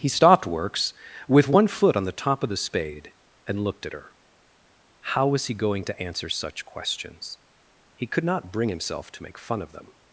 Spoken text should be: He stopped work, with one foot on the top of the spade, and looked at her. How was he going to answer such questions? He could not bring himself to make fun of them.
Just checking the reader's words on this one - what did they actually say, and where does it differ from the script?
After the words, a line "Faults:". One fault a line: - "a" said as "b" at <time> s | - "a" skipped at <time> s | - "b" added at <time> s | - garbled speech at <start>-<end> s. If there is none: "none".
He stopped works, with one foot on the top of the spade, and looked at her. How was he going to answer such questions? He could not bring himself to make fun of them.
Faults:
- "work" said as "works" at 0.5 s